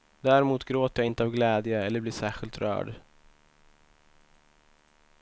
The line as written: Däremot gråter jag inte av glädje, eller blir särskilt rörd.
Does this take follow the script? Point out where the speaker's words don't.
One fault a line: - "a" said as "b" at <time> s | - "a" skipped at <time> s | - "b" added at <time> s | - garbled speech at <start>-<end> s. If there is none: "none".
none